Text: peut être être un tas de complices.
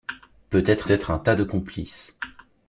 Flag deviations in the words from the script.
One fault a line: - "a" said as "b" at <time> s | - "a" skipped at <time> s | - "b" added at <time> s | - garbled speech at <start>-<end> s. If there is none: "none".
none